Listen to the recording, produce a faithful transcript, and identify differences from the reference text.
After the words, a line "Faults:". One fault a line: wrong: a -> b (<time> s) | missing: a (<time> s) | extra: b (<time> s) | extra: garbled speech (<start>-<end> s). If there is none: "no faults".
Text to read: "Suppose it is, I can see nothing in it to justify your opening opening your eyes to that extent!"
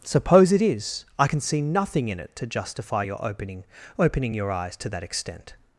"Suppose it is, I can see nothing in it to justify your opening opening your eyes to that extent!"
Faults:
no faults